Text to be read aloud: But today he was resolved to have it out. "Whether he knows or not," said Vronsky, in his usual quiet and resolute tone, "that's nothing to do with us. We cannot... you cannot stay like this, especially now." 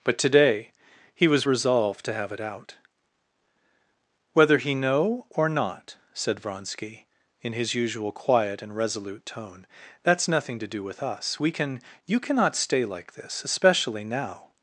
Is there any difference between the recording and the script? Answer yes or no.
yes